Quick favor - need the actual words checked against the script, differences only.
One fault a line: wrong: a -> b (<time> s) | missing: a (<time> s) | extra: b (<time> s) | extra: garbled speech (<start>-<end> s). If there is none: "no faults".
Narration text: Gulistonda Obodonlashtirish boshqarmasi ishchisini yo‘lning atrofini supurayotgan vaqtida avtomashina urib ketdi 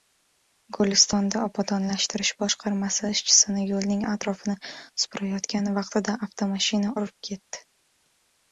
no faults